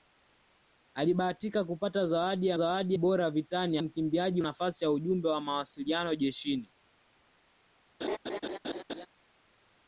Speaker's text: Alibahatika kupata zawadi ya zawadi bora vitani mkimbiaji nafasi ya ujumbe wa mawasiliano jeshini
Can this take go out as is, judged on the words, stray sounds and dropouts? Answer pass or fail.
fail